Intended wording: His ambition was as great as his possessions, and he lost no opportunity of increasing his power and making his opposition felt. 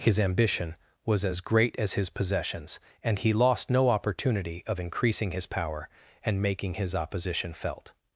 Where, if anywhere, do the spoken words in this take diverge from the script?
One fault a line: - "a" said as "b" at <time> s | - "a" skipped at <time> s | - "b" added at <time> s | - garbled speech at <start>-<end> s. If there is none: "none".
none